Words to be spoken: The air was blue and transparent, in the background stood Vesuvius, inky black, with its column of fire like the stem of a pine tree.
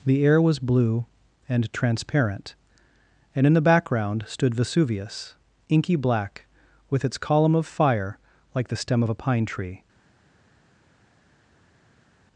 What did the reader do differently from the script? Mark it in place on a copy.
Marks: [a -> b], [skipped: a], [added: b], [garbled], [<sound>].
The air was blue and transparent, [added: and] in the background stood Vesuvius, inky black, with its column of fire like the stem of a pine tree.